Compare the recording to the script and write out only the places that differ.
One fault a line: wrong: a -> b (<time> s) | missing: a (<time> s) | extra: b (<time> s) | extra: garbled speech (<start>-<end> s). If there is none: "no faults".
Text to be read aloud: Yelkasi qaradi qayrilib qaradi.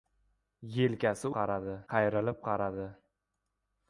no faults